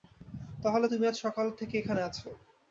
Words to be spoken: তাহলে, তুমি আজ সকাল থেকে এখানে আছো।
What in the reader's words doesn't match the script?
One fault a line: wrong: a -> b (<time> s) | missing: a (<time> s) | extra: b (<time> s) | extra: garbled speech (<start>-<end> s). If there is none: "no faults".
no faults